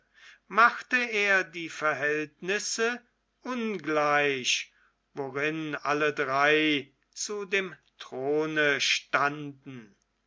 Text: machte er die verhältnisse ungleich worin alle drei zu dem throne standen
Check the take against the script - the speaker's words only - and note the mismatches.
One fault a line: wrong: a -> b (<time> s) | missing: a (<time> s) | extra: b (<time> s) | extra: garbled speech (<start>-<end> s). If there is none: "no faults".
no faults